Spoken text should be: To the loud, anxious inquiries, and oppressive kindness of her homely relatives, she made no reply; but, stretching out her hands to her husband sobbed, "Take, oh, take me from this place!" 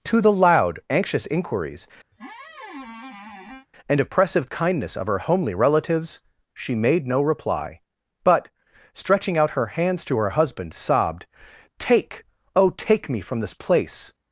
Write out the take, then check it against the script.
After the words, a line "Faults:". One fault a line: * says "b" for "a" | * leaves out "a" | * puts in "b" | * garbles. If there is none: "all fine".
To the loud, anxious inquiries, and oppressive kindness of her homely relatives, she made no reply; but, stretching out her hands to her husband sobbed, "Take, oh, take me from this place!"
Faults:
all fine